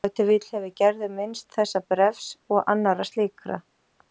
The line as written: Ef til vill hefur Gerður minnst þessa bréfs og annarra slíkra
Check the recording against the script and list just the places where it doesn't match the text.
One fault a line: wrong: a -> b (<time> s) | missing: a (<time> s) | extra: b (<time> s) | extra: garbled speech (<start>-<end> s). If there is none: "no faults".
no faults